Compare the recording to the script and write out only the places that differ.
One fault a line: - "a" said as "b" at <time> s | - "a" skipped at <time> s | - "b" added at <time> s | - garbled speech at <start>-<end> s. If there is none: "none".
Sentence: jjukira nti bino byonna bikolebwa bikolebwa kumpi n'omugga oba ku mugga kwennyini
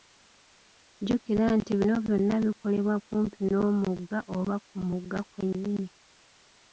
- "bikolebwa" skipped at 3.0 s